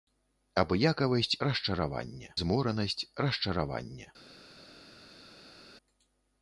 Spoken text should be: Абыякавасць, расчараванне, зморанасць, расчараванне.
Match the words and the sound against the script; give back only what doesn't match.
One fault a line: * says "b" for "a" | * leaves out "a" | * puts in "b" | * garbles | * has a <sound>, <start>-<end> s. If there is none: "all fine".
all fine